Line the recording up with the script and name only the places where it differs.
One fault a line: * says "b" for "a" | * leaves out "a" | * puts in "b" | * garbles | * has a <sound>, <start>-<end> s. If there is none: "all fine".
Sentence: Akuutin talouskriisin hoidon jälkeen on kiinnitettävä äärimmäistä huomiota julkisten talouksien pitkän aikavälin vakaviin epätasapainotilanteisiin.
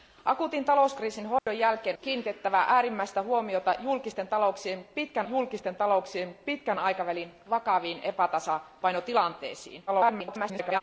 * has a dropout, 1.4-1.5 s
* leaves out "on"
* puts in "julkisten talouksien pitkän"
* garbles